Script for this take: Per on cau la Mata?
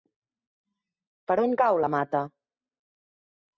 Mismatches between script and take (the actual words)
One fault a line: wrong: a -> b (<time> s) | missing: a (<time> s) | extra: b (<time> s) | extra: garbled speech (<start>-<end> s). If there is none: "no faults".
no faults